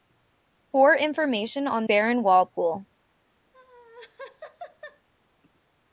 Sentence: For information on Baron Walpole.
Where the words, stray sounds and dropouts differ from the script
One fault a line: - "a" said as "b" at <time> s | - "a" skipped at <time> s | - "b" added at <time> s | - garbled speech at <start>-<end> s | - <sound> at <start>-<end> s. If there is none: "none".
- laugh at 3.5-5.1 s